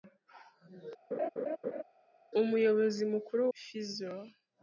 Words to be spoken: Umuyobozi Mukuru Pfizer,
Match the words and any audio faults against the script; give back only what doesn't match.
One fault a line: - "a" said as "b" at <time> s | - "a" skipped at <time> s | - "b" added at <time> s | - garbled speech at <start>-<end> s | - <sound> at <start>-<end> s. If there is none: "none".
- laugh at 1.1-1.8 s